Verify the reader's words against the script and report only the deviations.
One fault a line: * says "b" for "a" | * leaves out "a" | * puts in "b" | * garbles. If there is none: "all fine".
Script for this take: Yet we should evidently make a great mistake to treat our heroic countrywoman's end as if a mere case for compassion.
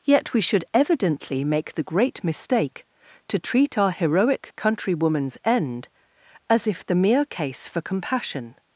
* says "the" for "a"
* says "the" for "a"